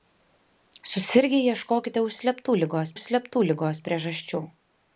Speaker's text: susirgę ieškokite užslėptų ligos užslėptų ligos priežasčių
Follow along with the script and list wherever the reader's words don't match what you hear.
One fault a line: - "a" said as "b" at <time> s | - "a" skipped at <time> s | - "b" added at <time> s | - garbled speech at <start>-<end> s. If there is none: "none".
none